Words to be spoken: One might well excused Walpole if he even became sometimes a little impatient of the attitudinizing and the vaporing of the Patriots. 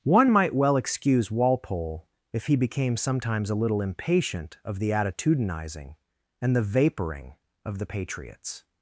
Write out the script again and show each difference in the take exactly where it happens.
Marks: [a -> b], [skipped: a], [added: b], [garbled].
One might well [excused -> excuse] Walpole if he [skipped: even] became sometimes a little impatient of the attitudinizing and the vaporing of the Patriots.